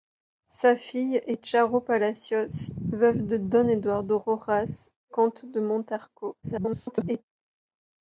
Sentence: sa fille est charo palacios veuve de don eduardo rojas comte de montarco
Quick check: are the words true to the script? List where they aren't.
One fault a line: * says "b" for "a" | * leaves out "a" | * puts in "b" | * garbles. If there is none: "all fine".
* garbles